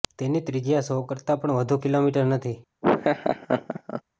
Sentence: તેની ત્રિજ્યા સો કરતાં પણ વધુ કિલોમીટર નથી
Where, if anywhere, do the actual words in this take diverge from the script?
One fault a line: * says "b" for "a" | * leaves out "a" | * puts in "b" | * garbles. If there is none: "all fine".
all fine